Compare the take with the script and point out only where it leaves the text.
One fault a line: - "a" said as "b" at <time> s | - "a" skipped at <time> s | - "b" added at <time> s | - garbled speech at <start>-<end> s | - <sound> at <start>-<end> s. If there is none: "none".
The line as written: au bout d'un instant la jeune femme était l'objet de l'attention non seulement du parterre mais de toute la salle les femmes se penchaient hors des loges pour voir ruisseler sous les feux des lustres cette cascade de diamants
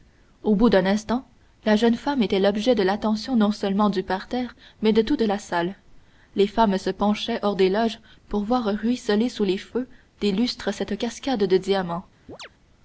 - chirp at 12.3-12.5 s